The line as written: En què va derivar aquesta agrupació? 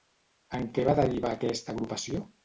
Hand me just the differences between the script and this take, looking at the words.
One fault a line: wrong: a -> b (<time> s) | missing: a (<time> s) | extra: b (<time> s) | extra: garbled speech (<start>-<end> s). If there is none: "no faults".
no faults